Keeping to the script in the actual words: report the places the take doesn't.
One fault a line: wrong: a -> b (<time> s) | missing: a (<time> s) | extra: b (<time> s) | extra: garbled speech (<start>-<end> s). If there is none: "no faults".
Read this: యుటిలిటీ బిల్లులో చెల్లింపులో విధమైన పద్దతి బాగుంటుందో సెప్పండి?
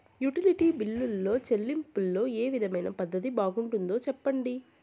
extra: ఏ (2.3 s)